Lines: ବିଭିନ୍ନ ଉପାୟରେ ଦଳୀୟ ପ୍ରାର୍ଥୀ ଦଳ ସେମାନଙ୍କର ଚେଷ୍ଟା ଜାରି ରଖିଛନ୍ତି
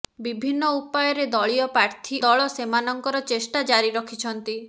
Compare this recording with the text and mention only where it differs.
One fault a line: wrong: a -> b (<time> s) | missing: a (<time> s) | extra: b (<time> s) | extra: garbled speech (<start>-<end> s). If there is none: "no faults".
no faults